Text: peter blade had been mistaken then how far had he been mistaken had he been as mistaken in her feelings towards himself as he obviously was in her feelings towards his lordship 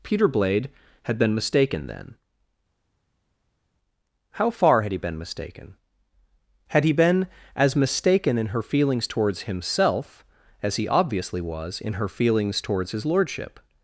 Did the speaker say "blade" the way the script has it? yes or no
yes